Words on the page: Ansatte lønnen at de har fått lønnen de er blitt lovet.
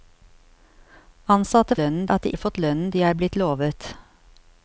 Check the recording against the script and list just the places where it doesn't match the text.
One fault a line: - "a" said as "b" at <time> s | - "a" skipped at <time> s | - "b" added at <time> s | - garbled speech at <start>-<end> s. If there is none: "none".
none